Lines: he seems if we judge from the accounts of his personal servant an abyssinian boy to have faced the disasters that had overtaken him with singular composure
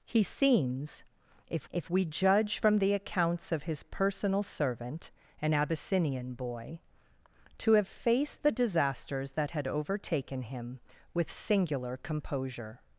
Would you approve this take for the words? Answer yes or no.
no